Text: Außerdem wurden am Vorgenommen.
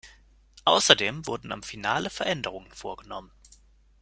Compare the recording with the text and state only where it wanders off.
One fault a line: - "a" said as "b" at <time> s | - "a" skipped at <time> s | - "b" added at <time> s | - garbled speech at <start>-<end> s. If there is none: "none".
- "Finale Veränderungen" added at 1.6 s